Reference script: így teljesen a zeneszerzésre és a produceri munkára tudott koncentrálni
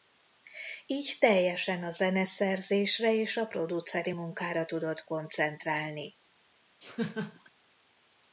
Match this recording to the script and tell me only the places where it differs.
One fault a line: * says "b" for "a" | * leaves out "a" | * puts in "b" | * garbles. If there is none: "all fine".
all fine